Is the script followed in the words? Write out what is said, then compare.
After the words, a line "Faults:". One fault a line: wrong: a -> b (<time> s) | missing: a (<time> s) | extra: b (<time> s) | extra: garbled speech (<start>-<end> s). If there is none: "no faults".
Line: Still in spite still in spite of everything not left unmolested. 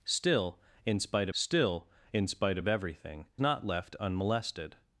Still in spite still in spite of everything not left unmolested.
Faults:
no faults